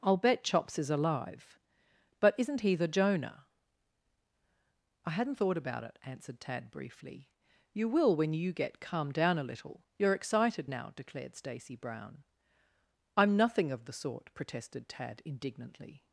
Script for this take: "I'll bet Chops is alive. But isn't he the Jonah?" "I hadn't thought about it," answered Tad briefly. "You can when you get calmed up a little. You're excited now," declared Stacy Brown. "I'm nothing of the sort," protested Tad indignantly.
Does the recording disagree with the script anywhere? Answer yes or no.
yes